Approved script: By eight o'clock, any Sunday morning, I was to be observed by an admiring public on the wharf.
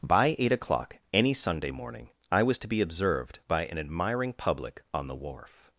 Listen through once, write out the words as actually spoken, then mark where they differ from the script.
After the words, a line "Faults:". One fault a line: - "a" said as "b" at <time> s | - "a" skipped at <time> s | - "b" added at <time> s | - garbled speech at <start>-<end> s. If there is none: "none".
By eight o'clock, any Sunday morning, I was to be observed by an admiring public on the wharf.
Faults:
none